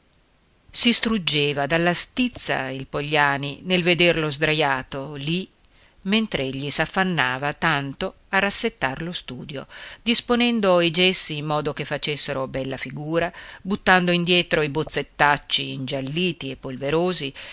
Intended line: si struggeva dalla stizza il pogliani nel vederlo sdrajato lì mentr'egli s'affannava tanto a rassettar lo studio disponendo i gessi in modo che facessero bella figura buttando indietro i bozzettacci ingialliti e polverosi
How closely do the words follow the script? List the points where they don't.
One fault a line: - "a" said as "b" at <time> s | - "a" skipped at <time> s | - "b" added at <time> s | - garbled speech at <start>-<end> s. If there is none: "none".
none